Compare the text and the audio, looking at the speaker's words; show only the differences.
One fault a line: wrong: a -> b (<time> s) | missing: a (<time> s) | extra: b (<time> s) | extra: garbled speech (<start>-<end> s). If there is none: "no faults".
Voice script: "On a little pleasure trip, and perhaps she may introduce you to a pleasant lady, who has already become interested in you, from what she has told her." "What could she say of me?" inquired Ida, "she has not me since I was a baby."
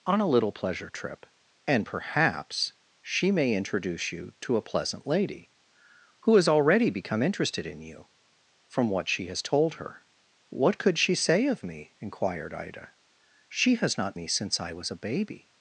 no faults